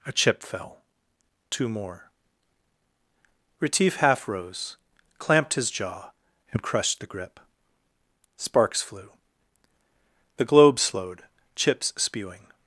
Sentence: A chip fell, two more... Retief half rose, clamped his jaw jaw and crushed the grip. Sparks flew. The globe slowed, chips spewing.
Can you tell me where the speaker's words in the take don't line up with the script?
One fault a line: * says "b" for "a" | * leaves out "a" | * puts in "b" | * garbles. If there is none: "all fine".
* leaves out "jaw"